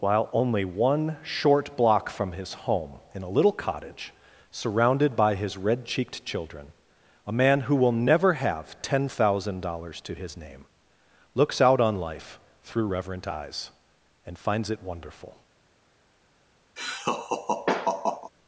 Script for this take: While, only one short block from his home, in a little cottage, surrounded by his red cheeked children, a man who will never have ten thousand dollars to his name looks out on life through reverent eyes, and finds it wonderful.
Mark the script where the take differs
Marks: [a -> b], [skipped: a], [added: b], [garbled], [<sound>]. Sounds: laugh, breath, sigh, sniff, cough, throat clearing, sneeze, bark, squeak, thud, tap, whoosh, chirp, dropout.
While, only one short block from his home, in a little cottage, surrounded by his red cheeked children, a man who will never have ten thousand dollars to his name looks out on life through reverent eyes, and finds it wonderful. [laugh]